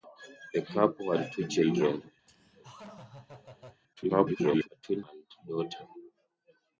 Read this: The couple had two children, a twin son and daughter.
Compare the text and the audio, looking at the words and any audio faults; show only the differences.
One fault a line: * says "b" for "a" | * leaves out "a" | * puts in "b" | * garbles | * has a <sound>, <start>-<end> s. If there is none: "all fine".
* has a laugh, 2.3-3.8 s
* garbles
* leaves out "son"